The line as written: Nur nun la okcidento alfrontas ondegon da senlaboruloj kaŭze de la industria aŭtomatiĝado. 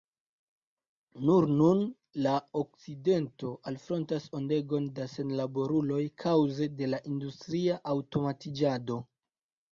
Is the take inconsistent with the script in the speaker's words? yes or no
no